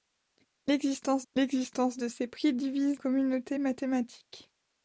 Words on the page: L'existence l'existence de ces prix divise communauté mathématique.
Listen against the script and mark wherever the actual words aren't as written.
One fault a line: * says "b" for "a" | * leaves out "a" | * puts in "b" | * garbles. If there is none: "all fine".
all fine